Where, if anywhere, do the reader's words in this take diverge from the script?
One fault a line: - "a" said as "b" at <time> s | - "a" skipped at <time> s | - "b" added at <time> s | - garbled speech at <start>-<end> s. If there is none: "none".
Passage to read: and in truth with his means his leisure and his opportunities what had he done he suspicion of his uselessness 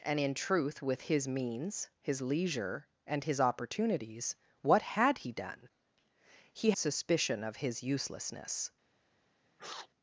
none